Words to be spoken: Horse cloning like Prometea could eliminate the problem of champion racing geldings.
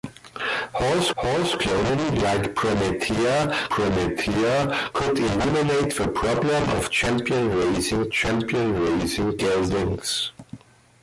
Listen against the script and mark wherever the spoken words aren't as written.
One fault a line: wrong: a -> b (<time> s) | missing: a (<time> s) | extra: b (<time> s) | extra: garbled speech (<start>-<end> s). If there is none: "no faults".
extra: horse (1.2 s)
extra: Prometea (3.7 s)
extra: champion racing (8.1 s)